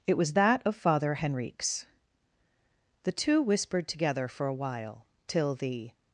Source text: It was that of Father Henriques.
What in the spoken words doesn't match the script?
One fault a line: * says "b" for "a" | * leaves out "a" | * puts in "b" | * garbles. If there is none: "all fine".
* puts in "The two whispered together for a while till the"